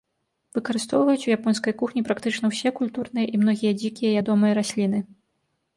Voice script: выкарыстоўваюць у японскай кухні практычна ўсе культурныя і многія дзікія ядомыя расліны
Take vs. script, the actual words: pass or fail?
pass